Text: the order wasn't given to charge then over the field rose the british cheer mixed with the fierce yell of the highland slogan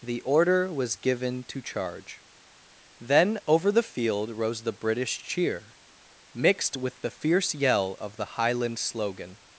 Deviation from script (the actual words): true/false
true